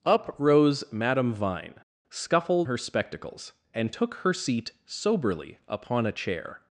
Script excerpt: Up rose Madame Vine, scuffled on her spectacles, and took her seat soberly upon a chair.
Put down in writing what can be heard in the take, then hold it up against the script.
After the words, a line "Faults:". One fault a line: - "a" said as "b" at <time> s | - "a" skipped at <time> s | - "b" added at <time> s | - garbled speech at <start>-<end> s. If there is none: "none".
Up rose Madame Vine, scuffled her spectacles, and took her seat soberly upon a chair.
Faults:
- "on" skipped at 2.7 s